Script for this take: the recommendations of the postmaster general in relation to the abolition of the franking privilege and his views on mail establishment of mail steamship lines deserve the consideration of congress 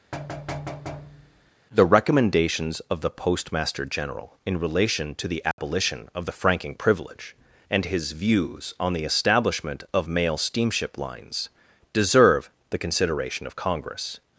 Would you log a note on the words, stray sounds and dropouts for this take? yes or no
yes